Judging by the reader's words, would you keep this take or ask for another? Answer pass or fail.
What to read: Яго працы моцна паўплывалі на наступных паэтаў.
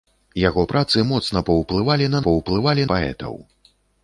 fail